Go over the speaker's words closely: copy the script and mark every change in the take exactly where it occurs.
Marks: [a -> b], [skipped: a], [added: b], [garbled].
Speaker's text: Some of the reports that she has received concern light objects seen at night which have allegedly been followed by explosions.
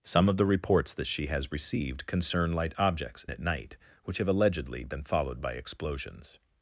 Some of the reports that she has received concern light objects [skipped: seen] at night which have allegedly been followed by explosions.